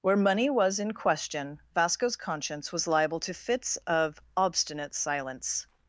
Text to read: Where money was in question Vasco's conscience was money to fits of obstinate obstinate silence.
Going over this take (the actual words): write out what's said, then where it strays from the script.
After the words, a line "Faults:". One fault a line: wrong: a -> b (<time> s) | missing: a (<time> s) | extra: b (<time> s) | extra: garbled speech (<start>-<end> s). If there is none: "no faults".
Where money was in question Vasco's conscience was liable to fits of obstinate silence.
Faults:
wrong: money -> liable (2.9 s)
missing: obstinate (5.0 s)